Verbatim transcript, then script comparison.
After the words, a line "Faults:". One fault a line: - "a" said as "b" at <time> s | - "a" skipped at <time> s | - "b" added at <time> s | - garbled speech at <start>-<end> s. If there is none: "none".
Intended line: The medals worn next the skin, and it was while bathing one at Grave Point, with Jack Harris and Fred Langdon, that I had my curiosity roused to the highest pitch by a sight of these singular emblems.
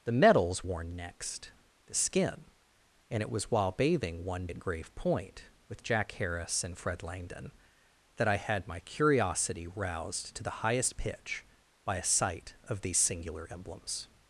The medals worn next the skin, and it was while bathing one at Grave Point, with Jack Harris and Fred Langdon, that I had my curiosity roused to the highest pitch by a sight of these singular emblems.
Faults:
none